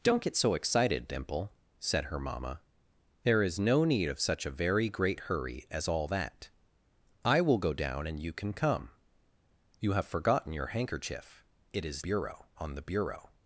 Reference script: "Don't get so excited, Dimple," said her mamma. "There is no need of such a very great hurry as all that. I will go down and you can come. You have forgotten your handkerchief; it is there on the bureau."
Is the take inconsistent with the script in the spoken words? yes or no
yes